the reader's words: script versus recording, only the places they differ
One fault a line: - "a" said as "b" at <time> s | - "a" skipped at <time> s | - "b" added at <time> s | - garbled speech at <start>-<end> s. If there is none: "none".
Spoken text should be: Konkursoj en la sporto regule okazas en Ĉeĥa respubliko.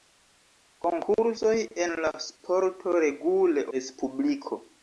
- "okazas en Ĉeĥa" skipped at 3.7 s